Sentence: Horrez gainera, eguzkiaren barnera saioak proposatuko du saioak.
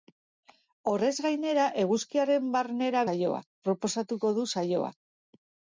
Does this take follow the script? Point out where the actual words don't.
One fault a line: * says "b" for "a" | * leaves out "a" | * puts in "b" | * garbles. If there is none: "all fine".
all fine